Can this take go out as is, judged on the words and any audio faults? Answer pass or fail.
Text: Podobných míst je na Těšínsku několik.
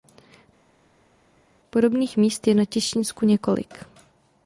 pass